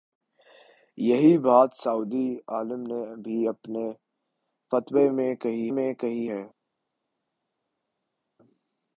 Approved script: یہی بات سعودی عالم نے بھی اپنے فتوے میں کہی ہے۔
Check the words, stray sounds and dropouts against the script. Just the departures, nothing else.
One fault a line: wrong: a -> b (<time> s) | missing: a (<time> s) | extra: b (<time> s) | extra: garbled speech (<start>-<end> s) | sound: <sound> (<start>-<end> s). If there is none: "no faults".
extra: میں کہی (5.7 s)